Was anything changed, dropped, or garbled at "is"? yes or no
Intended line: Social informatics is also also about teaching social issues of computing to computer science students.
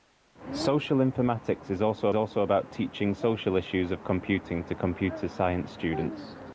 no